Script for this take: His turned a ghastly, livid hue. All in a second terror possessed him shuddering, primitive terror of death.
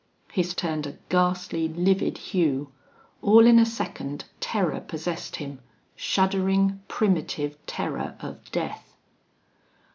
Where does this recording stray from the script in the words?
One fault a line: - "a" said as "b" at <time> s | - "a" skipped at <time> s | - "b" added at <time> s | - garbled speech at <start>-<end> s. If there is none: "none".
none